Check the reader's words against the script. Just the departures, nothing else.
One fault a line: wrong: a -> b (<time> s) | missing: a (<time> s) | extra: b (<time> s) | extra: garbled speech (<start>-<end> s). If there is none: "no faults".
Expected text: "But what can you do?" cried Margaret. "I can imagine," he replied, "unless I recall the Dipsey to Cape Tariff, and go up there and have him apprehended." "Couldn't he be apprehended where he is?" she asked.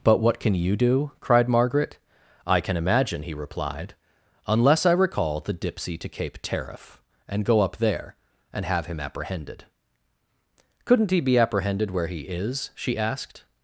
no faults